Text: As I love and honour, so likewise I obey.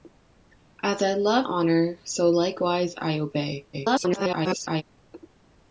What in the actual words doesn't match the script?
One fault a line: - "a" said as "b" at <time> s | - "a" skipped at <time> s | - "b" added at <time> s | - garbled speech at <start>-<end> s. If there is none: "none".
- "and" skipped at 1.4 s
- garbled speech at 3.7-4.8 s